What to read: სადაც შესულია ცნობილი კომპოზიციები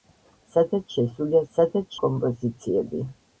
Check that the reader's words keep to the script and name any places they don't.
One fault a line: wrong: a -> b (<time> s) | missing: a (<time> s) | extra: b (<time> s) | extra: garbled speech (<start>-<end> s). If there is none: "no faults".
wrong: ცნობილი -> სადაც (1.6 s)